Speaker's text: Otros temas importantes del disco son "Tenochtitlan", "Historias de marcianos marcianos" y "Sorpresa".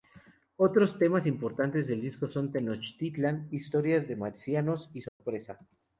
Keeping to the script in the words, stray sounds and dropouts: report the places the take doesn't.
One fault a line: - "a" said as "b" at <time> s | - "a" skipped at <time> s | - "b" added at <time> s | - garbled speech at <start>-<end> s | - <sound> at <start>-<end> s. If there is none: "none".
- "marcianos" skipped at 4.9 s
- dropout at 5.1-5.2 s